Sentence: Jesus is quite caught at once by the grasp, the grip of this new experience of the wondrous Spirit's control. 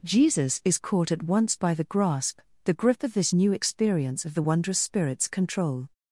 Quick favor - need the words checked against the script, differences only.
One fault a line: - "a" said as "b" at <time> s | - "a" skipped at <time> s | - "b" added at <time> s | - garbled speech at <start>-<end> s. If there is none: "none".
- "quite" skipped at 0.8 s